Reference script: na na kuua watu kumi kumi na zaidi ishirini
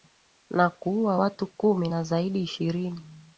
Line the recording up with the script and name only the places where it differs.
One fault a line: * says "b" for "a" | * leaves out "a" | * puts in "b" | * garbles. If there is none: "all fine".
* leaves out "na"
* leaves out "kumi"